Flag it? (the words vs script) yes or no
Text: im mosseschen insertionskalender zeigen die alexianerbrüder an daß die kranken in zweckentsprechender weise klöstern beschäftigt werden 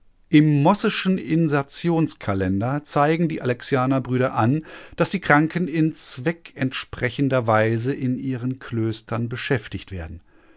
yes